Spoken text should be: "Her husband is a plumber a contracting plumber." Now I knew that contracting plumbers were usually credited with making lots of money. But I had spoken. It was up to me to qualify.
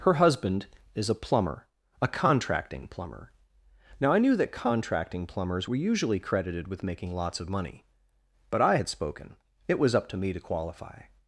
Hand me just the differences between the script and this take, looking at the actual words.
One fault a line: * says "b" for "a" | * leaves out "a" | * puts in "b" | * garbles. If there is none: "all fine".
all fine